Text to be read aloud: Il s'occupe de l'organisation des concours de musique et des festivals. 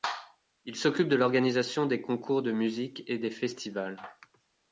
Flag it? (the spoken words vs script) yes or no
no